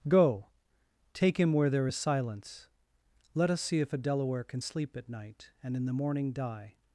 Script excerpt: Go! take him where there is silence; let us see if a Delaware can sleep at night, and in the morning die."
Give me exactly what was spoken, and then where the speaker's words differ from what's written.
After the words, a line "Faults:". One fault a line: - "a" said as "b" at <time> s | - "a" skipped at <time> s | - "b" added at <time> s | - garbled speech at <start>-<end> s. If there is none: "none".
Go! take him where there is silence; let us see if a Delaware can sleep at night, and in the morning die."
Faults:
none